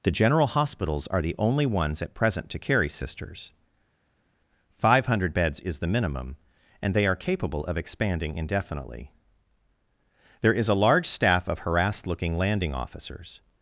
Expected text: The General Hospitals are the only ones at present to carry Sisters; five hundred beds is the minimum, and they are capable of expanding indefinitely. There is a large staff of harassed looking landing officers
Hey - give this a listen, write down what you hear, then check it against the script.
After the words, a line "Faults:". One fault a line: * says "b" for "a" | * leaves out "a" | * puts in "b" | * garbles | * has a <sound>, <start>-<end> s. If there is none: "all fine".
The General Hospitals are the only ones at present to carry Sisters; five hundred beds is the minimum, and they are capable of expanding indefinitely. There is a large staff of harassed looking landing officers
Faults:
all fine